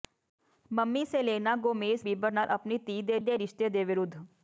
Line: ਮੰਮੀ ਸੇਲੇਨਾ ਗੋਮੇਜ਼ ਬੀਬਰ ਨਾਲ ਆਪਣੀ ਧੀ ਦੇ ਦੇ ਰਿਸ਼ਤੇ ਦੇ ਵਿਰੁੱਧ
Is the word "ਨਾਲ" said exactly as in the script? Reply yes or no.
yes